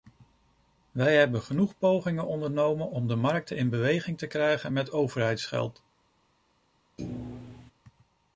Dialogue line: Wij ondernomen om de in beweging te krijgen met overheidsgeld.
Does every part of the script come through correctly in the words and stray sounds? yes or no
no